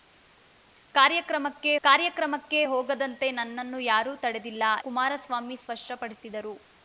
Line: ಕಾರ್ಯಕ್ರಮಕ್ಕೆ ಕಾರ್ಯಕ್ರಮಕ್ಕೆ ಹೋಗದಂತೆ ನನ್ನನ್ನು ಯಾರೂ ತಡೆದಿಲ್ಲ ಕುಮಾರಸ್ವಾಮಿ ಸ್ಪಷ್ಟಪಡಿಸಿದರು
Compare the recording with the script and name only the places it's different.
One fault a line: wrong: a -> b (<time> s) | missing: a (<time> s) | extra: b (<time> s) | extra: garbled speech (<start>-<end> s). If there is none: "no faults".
no faults